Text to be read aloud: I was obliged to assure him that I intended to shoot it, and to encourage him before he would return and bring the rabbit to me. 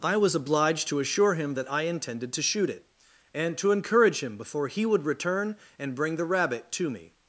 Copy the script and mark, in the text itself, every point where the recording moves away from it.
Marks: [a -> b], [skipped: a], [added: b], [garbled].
I was obliged to assure him that I intended to shoot it, and to encourage him before he would return and bring the rabbit to me.